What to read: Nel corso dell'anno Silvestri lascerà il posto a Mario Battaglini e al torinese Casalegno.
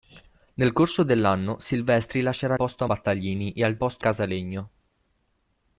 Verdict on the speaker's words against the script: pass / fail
fail